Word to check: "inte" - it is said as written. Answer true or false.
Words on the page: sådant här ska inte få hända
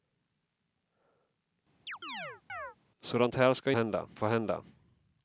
false